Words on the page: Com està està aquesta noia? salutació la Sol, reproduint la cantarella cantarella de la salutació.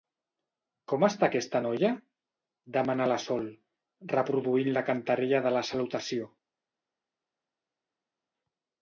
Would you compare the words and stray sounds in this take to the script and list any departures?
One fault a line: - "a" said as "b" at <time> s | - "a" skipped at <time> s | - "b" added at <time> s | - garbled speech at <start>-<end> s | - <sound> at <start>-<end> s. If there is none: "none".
- "està" skipped at 1.3 s
- "salutació" said as "demana" at 2.8 s
- "cantarella" skipped at 5.5 s